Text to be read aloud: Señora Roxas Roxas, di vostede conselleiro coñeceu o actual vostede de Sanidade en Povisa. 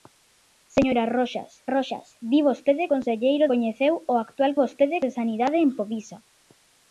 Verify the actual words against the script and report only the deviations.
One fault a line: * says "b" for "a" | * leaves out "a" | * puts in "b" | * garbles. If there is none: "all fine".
all fine